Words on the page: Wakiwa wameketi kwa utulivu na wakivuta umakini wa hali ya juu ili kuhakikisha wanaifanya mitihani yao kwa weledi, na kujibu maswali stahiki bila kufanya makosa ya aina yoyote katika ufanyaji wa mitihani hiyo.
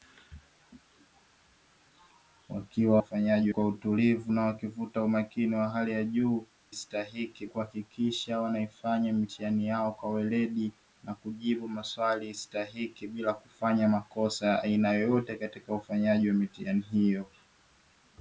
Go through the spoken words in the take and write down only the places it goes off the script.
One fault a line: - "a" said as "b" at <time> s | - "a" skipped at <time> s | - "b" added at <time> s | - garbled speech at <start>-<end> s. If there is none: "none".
- "wameketi" said as "ufanyaji" at 3.0 s
- "ili" said as "stahiki" at 6.7 s